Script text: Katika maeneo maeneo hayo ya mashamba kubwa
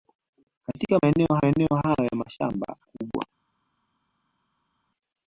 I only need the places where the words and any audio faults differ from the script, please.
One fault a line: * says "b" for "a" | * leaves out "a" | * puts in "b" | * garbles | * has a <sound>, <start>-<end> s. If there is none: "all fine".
all fine